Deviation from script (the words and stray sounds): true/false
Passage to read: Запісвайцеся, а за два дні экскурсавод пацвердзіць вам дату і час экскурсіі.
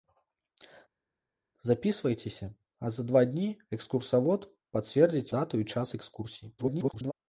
true